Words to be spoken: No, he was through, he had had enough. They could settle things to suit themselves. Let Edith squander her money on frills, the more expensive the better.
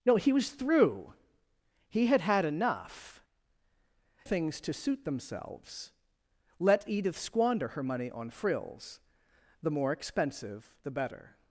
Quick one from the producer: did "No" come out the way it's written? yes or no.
yes